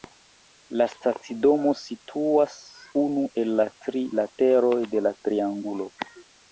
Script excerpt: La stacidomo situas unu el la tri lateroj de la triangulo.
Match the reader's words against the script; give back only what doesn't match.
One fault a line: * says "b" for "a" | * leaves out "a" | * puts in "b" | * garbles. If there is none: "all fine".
all fine